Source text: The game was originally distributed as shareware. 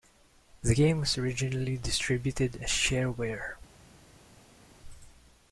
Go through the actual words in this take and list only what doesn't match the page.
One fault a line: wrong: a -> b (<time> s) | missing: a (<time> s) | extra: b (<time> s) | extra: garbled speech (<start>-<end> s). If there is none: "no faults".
no faults